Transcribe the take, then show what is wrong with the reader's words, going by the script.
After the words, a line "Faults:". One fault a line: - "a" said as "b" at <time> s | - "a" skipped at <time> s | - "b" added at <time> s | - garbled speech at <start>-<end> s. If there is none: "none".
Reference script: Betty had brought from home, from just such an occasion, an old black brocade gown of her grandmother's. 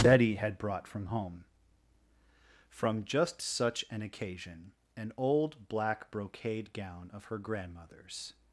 Betty had brought from home, from just such an occasion, an old black brocade gown of her grandmother's.
Faults:
none